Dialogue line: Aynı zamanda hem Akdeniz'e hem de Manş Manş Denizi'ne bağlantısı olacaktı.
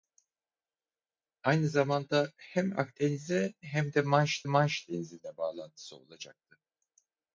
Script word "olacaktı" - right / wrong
right